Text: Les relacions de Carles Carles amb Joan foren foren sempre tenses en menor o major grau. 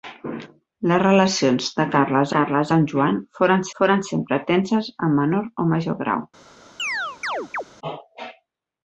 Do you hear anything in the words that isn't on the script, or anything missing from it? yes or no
no